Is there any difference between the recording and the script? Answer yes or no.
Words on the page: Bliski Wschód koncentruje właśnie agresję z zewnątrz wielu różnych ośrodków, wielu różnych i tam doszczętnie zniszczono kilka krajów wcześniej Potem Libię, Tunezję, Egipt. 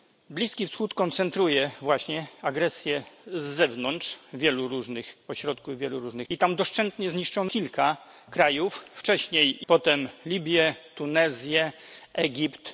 no